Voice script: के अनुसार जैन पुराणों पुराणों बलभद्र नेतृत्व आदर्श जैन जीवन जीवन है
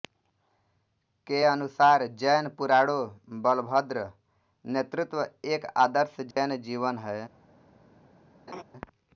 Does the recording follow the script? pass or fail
fail